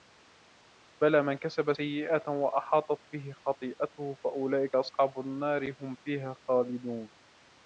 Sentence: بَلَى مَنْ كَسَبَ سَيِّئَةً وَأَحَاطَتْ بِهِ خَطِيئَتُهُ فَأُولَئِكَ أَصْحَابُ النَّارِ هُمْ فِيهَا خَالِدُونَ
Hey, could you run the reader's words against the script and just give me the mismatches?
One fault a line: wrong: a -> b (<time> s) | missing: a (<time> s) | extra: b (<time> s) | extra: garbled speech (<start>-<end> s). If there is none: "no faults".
no faults